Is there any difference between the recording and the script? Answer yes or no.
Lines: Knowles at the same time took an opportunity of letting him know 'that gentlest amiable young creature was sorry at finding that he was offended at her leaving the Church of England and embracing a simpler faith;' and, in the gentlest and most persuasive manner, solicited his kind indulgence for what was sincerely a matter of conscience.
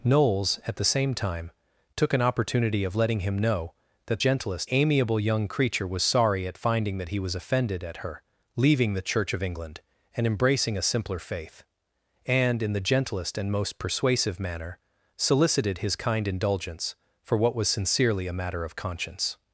no